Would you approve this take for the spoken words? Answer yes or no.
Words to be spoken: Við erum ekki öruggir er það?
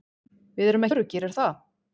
no